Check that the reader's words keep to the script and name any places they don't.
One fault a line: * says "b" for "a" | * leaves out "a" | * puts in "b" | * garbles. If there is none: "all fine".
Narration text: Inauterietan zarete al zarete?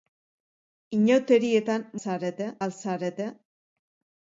all fine